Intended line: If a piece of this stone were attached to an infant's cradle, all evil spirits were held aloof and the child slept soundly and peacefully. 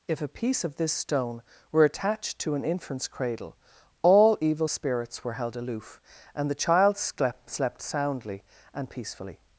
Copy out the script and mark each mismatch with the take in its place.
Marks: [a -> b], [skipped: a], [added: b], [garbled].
If a piece of this stone were attached to an infant's cradle, all evil spirits were held aloof and the child slept [added: slept] soundly and peacefully.